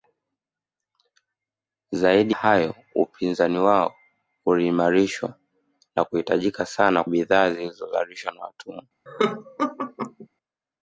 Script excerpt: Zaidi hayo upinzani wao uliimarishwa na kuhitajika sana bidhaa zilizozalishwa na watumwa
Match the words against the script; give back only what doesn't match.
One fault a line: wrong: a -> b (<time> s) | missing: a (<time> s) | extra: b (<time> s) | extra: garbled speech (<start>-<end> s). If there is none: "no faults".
no faults